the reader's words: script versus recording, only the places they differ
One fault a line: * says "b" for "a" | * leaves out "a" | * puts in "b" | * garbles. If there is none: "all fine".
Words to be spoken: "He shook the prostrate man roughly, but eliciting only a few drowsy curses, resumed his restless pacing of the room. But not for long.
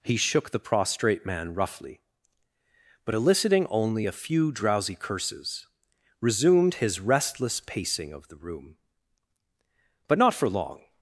all fine